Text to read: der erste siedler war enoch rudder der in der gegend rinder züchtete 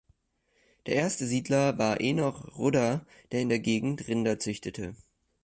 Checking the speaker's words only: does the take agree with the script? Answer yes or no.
yes